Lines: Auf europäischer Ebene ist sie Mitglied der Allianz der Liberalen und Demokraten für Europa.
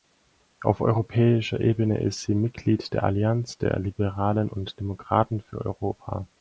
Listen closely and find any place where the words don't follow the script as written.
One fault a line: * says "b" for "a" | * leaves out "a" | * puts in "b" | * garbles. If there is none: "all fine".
all fine